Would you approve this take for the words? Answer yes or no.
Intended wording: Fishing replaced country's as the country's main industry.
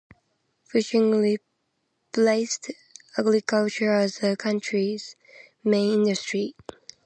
no